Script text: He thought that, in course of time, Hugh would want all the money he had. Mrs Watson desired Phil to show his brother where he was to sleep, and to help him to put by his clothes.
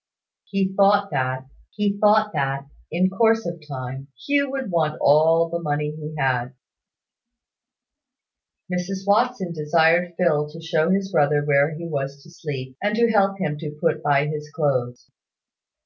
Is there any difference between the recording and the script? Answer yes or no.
yes